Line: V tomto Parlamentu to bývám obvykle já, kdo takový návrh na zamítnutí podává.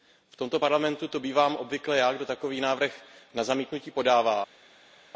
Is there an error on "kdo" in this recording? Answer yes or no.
no